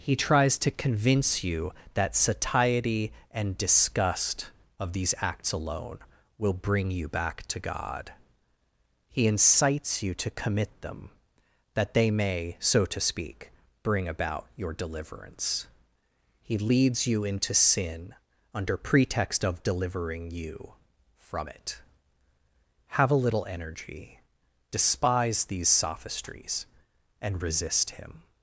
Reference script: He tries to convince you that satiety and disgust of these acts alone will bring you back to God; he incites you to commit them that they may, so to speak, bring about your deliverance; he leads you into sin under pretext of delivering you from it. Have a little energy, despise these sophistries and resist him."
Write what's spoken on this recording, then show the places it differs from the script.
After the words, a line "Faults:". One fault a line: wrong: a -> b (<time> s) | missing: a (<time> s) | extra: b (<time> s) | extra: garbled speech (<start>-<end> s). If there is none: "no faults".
He tries to convince you that satiety and disgust of these acts alone will bring you back to God; he incites you to commit them that they may, so to speak, bring about your deliverance; he leads you into sin under pretext of delivering you from it. Have a little energy, despise these sophistries and resist him."
Faults:
no faults